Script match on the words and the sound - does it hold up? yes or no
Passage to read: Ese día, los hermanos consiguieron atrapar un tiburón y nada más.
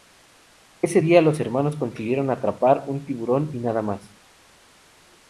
yes